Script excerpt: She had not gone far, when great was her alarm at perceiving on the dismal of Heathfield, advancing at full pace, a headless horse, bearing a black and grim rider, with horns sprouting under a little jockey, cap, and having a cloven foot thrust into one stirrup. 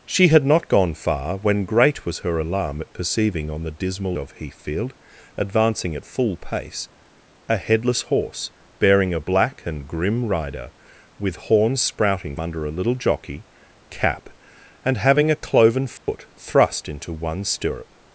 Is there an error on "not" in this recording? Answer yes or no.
no